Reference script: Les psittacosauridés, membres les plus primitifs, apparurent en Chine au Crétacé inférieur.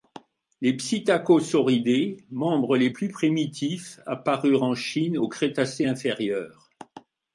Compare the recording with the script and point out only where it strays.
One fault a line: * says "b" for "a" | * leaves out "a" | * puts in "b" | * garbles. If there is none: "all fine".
all fine